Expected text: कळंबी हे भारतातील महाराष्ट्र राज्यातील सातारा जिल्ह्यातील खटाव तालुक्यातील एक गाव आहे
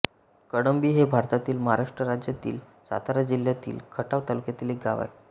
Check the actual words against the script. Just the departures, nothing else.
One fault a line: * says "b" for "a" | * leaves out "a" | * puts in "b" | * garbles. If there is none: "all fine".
all fine